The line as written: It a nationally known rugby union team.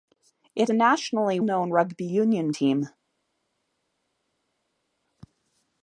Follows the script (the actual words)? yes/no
yes